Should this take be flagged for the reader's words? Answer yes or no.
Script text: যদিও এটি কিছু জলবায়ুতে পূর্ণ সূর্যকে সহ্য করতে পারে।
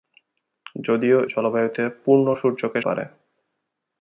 yes